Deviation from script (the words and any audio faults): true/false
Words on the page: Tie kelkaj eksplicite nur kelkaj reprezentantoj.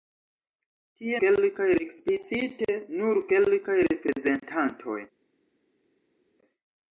false